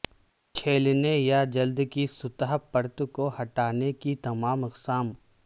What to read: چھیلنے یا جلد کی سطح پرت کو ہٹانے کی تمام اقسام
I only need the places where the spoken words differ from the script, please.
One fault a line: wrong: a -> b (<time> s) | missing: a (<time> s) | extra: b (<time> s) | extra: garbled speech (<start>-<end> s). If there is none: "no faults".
no faults